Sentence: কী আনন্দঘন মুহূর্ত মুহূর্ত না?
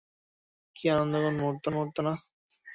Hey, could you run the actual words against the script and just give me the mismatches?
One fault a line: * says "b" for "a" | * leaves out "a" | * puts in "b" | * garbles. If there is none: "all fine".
all fine